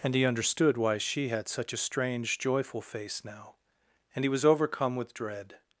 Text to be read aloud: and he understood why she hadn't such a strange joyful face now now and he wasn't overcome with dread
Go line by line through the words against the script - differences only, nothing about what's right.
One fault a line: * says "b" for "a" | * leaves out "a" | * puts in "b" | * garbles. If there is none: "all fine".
* says "had" for "hadn't"
* leaves out "now"
* says "was" for "wasn't"